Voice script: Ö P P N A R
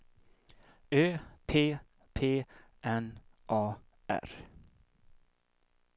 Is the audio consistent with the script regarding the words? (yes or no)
yes